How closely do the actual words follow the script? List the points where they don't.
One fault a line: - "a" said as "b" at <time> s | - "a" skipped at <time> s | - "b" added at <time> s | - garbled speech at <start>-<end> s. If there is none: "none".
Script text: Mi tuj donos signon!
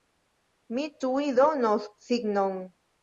none